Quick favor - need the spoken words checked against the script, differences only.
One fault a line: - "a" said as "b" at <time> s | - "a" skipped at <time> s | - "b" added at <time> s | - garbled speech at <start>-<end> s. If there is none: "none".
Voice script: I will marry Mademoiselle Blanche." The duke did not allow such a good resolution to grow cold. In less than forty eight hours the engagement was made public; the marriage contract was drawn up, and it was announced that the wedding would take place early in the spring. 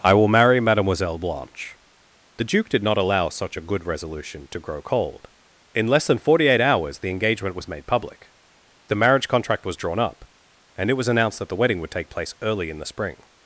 none